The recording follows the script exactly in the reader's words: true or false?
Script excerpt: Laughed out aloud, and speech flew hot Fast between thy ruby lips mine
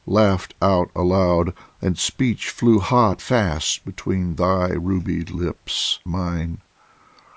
true